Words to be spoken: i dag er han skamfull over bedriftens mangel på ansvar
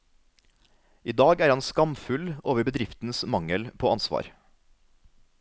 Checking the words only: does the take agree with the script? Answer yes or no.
yes